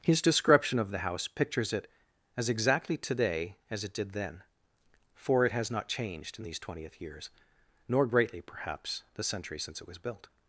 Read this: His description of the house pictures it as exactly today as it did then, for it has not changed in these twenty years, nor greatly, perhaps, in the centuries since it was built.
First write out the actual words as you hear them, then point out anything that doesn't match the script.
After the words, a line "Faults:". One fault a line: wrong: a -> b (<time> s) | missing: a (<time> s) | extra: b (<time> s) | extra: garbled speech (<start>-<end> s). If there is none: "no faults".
His description of the house pictures it as exactly today as it did then, for it has not changed in these twentieth years, nor greatly, perhaps, the centuries since it was built.
Faults:
wrong: twenty -> twentieth (6.6 s)
missing: in (9.0 s)